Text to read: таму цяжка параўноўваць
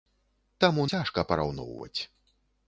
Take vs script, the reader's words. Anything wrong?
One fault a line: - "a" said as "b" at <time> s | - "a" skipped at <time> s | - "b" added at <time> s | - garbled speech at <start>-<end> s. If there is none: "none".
none